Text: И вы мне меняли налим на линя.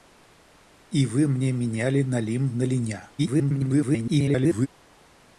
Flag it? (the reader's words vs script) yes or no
yes